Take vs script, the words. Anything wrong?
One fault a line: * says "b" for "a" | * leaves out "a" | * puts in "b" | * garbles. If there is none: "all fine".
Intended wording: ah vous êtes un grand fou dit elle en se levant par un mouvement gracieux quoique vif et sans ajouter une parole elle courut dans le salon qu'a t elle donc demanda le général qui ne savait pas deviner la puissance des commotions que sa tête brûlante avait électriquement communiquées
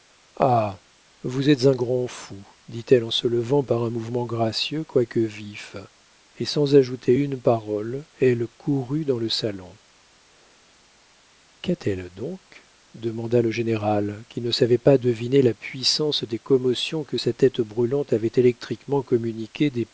all fine